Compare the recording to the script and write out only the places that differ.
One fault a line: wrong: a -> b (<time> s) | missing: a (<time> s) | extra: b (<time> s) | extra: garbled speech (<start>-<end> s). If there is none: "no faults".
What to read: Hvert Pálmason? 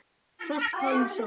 no faults